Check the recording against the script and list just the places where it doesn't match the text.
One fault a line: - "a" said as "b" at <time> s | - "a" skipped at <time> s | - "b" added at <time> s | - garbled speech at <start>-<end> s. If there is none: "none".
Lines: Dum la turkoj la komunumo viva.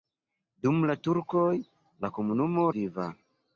none